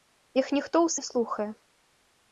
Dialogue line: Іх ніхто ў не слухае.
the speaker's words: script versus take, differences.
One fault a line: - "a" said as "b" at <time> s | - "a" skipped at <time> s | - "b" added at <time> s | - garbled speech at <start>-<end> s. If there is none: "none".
none